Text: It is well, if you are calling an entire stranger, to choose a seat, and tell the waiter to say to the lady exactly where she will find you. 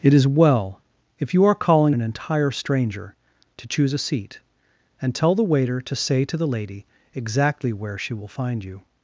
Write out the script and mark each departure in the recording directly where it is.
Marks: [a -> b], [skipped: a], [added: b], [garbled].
It is well, if you are calling an entire stranger, to choose a seat, and tell the waiter to say to the lady exactly where she will find you.